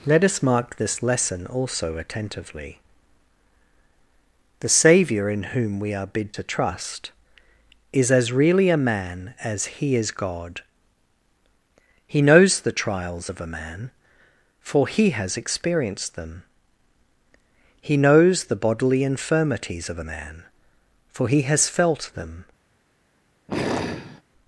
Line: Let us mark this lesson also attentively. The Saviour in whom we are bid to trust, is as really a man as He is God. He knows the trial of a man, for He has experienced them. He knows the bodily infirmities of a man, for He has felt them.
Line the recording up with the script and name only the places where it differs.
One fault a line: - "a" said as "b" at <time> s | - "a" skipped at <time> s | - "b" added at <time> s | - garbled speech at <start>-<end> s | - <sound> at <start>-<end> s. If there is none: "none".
- "trial" said as "trials" at 12.7 s
- sigh at 23.5-24.2 s